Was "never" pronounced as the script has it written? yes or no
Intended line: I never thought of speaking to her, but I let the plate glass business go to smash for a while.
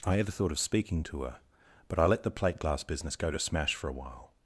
no